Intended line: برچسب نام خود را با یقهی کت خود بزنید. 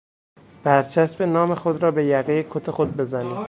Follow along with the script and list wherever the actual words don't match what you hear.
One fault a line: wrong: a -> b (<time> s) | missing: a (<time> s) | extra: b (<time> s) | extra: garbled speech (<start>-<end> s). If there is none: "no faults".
wrong: با -> به (1.9 s)